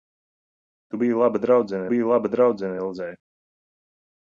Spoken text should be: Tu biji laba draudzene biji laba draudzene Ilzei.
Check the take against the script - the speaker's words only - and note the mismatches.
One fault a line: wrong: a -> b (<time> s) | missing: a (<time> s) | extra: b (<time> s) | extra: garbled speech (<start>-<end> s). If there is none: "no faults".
no faults